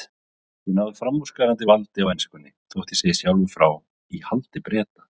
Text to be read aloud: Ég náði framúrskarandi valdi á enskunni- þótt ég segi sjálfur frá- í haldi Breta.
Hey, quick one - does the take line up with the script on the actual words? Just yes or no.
yes